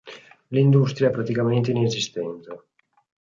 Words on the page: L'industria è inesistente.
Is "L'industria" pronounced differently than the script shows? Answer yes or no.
no